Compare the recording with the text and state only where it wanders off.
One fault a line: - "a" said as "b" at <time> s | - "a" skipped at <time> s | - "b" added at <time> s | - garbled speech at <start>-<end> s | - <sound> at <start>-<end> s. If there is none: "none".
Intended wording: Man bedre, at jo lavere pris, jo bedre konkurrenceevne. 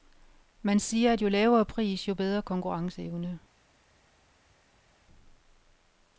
- "bedre" said as "siger" at 0.8 s